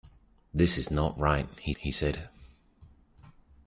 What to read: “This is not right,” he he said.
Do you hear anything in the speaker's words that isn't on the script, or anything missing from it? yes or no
no